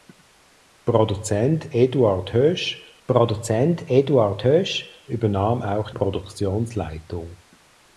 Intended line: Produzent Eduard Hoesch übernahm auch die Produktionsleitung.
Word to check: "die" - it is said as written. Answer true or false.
false